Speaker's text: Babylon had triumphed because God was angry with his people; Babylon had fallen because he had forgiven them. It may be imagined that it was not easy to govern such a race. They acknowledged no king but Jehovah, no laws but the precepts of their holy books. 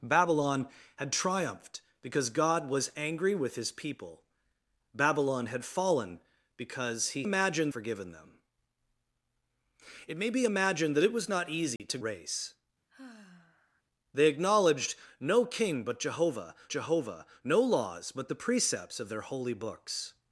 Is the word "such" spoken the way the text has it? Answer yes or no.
no